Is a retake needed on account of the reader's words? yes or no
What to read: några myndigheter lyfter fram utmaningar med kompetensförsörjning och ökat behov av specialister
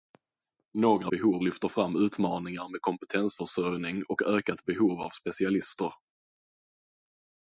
yes